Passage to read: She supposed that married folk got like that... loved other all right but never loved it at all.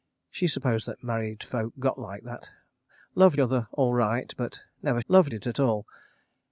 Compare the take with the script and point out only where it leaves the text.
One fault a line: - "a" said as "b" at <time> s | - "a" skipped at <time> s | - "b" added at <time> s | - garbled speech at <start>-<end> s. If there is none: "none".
none